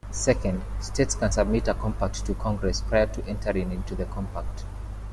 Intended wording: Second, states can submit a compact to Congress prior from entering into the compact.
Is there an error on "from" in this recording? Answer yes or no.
yes